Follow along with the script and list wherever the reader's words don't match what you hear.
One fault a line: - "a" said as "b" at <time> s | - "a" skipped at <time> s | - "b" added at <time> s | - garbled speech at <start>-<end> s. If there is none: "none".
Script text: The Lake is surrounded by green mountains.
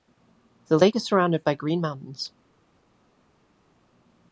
none